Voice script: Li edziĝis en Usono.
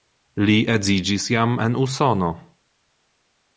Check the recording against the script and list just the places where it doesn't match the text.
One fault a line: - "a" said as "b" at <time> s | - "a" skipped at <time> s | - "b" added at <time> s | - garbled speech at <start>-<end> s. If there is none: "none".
- "jam" added at 1.4 s